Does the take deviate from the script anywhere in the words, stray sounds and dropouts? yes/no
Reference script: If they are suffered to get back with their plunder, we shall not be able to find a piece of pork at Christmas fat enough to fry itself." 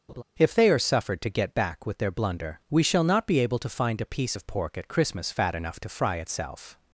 yes